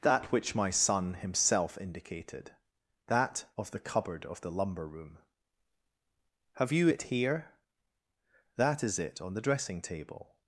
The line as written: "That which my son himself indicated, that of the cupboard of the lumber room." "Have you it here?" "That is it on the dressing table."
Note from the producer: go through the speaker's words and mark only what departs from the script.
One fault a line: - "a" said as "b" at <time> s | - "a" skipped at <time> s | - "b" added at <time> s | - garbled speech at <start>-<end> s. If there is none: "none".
none